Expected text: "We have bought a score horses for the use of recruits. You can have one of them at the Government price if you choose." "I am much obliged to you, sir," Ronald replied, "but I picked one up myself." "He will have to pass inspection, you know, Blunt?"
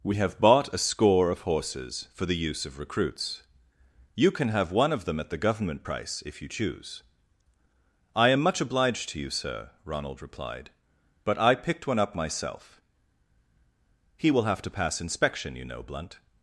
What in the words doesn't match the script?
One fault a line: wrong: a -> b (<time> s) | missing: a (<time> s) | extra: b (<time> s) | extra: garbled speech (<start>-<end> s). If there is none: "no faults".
extra: of (1.3 s)